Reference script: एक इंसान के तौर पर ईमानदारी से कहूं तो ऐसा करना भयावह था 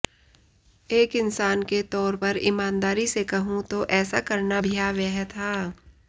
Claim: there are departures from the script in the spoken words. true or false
false